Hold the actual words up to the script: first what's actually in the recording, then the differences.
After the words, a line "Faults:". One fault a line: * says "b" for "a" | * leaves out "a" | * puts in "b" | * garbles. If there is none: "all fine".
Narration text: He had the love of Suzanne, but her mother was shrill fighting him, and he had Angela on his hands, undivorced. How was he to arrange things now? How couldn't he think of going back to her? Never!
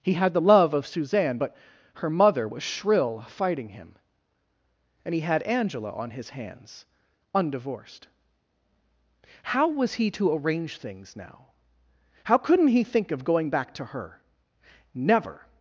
He had the love of Suzanne, but her mother was shrill fighting him, and he had Angela on his hands, undivorced. How was he to arrange things now? How couldn't he think of going back to her? Never!
Faults:
all fine